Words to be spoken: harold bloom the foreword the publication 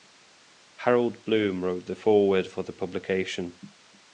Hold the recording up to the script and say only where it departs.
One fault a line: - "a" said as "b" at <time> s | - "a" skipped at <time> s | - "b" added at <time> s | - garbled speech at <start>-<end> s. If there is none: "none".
- "wrote" added at 1.6 s
- "for" added at 2.5 s